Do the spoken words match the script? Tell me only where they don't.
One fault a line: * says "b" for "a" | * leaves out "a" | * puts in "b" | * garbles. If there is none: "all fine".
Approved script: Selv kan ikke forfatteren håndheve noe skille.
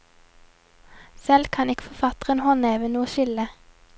all fine